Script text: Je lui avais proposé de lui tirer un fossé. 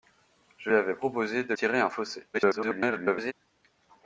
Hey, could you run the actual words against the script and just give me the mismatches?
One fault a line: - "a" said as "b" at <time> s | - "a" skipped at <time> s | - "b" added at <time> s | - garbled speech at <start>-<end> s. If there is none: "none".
- "lui" skipped at 0.7 s
- "lui" skipped at 1.5 s
- garbled speech at 2.3-3.3 s